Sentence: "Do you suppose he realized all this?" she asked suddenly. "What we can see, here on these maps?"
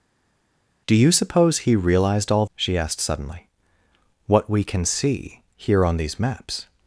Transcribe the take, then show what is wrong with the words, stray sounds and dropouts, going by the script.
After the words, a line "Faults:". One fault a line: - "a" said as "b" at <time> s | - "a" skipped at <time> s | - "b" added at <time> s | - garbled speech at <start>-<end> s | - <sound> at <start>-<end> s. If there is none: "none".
"Do you suppose he realized all?" she asked suddenly. "What we can see, here on these maps?"
Faults:
- "this" skipped at 2.4 s